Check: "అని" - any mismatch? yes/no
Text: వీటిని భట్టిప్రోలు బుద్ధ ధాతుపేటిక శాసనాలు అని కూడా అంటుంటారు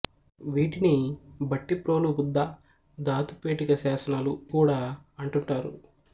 yes